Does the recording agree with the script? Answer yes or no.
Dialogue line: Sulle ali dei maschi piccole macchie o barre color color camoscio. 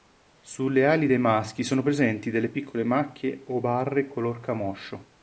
no